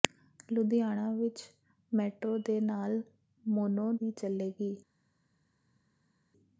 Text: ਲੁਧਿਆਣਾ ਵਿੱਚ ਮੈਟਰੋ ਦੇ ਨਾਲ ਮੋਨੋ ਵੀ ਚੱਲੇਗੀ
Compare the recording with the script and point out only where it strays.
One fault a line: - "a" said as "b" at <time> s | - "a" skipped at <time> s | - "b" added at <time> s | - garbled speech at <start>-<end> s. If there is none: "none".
none